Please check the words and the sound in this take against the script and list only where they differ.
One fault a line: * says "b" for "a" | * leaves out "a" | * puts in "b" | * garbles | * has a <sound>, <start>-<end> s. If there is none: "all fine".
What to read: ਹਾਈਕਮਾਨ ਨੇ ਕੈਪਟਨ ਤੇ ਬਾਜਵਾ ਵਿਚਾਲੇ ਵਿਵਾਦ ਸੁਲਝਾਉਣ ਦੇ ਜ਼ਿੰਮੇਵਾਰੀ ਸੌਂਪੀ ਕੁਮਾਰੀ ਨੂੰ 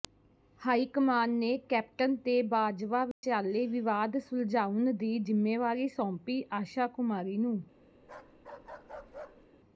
* has a dropout, 3.1-3.2 s
* says "ਦੀ" for "ਦੇ"
* puts in "ਆਸ਼ਾ"
* has a bark, 8.0-9.5 s